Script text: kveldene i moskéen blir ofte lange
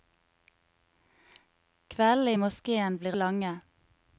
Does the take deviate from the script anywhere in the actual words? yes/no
yes